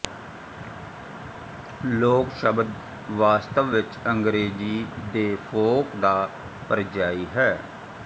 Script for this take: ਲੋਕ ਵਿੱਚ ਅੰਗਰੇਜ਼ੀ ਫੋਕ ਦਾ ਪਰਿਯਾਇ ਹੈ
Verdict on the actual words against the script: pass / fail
fail